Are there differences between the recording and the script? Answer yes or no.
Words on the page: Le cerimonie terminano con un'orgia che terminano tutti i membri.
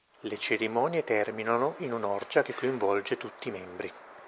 yes